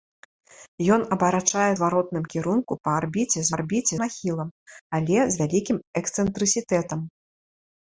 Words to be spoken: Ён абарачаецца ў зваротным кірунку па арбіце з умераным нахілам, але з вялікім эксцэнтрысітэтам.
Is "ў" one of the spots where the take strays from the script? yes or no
yes